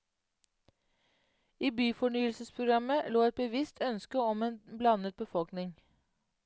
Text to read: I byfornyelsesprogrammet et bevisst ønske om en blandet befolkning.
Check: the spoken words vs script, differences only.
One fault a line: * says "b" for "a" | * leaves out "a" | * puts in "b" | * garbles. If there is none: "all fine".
* puts in "lå"